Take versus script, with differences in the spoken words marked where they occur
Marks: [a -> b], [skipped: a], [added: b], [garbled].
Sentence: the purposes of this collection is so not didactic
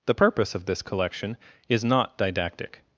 the [purposes -> purpose] of this collection is [skipped: so] not didactic